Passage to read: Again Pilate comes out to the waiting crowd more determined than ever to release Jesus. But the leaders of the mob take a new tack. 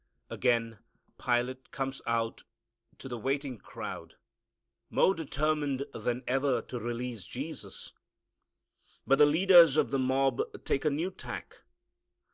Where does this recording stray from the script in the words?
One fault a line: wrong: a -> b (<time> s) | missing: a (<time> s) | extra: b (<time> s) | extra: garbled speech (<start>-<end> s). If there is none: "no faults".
no faults